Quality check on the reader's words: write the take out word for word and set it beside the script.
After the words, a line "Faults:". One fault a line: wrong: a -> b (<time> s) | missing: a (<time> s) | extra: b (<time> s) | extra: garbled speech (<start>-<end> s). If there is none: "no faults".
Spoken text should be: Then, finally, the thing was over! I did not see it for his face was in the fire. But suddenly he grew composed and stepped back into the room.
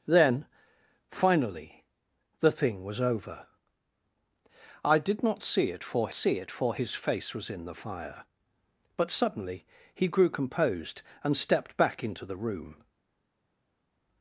Then, finally, the thing was over! I did not see it for see it for his face was in the fire. But suddenly he grew composed and stepped back into the room.
Faults:
extra: see it for (6.1 s)